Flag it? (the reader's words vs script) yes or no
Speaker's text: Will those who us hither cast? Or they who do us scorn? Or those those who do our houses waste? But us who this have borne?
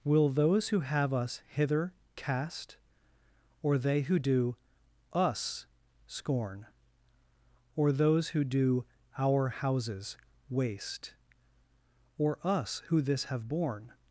yes